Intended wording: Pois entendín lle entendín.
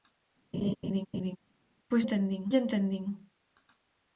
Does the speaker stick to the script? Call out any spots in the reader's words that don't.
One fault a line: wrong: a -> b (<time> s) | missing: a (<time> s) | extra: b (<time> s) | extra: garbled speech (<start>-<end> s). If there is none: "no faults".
no faults